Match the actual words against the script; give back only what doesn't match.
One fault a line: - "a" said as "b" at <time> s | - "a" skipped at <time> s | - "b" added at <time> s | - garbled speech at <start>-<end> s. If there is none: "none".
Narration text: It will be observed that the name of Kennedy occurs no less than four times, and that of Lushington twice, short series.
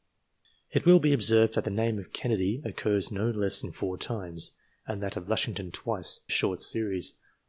none